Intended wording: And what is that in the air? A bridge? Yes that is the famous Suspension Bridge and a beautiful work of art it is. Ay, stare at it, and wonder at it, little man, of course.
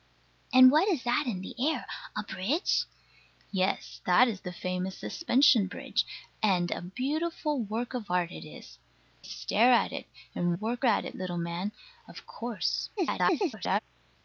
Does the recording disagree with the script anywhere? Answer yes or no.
yes